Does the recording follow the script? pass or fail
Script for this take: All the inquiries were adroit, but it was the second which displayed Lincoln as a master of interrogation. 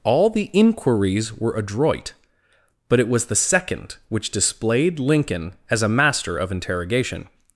pass